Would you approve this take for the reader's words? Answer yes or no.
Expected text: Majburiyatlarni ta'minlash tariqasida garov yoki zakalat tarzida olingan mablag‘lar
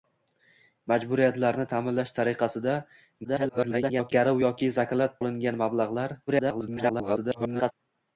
no